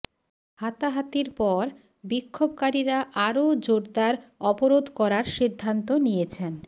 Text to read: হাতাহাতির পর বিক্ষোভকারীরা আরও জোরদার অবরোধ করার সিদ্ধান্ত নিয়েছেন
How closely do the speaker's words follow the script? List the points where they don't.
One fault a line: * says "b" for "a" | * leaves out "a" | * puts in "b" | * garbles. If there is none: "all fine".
all fine